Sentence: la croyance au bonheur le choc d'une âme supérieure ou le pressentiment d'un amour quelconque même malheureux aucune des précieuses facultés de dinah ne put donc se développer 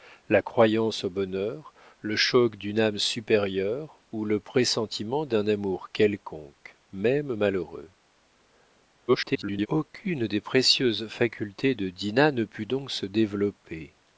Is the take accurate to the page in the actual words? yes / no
no